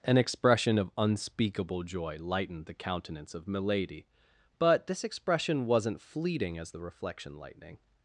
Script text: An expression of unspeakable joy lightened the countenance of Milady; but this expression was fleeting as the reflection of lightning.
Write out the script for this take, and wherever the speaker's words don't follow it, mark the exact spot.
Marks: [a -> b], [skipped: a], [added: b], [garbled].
An expression of unspeakable joy lightened the countenance of Milady; but this expression [was -> wasn't] fleeting as the reflection [skipped: of] lightning.